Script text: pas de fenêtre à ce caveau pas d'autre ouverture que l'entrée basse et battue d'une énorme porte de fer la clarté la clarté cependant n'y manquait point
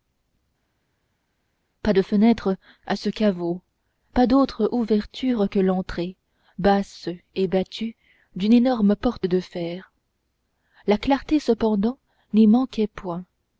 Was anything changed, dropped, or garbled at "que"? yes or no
no